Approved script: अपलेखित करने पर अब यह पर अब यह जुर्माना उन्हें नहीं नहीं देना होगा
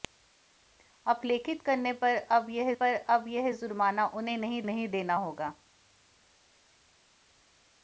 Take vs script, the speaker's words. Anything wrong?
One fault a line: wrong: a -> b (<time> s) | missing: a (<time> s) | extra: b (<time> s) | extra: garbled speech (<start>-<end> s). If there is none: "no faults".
no faults